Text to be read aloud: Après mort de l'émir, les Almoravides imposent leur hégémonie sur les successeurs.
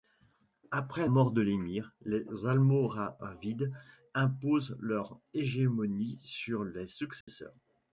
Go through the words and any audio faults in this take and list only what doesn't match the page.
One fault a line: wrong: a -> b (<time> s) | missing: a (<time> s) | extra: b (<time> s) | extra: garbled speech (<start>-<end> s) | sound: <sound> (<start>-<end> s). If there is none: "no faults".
sound: dropout (7.2-7.3 s)